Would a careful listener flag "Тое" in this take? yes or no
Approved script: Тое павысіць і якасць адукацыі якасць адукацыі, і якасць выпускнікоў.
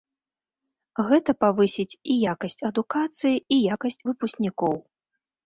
yes